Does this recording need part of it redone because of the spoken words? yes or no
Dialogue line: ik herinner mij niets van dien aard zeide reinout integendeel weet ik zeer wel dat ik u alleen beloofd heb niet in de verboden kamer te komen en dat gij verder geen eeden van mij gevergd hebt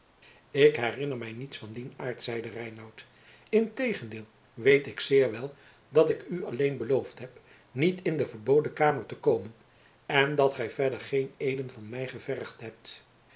no